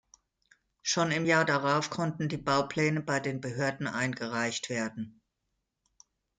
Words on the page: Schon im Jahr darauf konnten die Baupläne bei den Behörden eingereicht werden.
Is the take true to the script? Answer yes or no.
yes